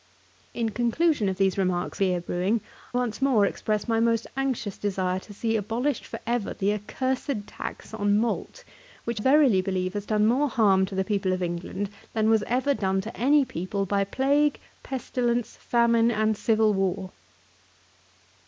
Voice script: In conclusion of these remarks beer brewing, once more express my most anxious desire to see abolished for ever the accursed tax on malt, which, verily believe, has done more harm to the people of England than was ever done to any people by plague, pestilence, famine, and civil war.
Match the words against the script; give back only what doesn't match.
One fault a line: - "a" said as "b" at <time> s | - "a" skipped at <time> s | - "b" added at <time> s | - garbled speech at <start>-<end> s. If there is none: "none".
none